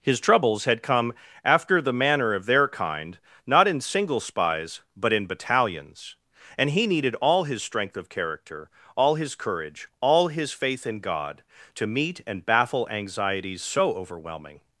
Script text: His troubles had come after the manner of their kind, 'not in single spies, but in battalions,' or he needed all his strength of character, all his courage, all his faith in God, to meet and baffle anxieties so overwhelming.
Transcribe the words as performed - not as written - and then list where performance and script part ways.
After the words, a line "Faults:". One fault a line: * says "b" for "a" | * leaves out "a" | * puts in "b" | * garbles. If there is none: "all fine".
His troubles had come after the manner of their kind, 'not in single spies, but in battalions,' and he needed all his strength of character, all his courage, all his faith in God, to meet and baffle anxieties so overwhelming.
Faults:
* says "and" for "or"